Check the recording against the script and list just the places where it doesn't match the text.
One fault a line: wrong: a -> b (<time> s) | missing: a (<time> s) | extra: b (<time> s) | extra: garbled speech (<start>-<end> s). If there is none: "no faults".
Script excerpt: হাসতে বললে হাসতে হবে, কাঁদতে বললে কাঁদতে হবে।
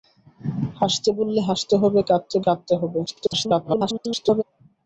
missing: বললে (2.4 s)
extra: garbled speech (3.1-4.4 s)